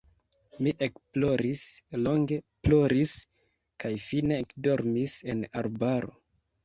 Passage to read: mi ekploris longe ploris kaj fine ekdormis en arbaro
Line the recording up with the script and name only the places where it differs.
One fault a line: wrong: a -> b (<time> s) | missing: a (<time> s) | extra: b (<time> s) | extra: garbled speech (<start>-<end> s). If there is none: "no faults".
no faults